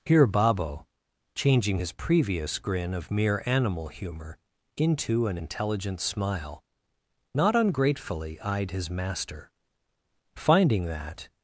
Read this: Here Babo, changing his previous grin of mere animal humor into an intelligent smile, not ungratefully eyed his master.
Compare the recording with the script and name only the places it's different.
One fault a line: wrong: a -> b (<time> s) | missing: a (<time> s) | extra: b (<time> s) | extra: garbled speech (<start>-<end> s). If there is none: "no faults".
extra: Finding that (10.3 s)